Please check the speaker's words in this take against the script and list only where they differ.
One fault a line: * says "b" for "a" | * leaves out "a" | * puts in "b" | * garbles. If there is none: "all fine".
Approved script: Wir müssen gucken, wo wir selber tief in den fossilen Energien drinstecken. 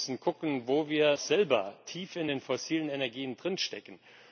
all fine